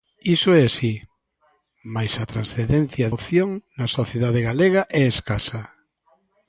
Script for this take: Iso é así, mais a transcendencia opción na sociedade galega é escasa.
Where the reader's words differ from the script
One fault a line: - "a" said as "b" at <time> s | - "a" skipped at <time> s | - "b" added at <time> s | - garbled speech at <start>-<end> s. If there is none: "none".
none